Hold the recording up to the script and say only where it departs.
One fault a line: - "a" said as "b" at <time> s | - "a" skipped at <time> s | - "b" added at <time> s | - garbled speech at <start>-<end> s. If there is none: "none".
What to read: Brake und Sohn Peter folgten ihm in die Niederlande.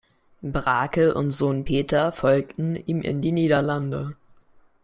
none